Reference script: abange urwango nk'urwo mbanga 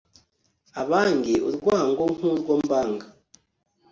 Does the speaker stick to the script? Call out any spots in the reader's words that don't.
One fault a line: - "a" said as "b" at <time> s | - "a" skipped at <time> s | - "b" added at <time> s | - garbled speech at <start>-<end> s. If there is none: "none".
none